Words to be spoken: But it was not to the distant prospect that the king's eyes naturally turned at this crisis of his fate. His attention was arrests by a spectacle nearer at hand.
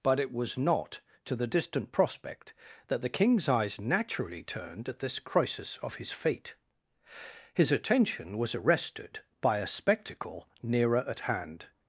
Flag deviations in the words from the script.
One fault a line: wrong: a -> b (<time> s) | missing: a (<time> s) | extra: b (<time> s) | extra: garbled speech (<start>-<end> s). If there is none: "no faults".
wrong: arrests -> arrested (8.5 s)